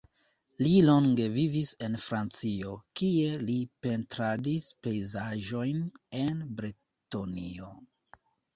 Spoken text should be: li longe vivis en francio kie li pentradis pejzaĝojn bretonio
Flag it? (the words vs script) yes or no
yes